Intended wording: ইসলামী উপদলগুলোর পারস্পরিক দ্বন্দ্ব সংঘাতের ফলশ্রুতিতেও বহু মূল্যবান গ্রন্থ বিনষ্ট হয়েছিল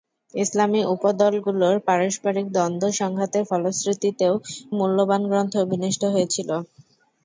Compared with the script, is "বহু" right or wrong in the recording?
wrong